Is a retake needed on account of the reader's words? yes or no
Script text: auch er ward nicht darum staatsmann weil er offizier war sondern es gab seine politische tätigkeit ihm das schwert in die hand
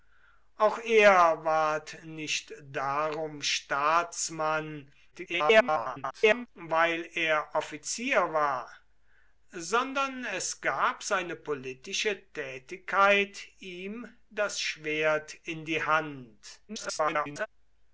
yes